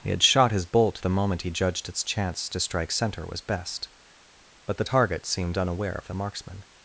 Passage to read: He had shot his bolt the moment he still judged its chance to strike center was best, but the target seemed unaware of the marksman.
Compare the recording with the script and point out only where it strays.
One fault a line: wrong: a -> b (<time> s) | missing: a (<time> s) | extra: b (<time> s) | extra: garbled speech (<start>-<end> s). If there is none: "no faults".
missing: still (1.5 s)